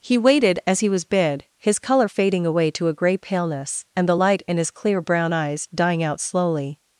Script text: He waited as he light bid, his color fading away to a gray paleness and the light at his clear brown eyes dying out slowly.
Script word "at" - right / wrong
wrong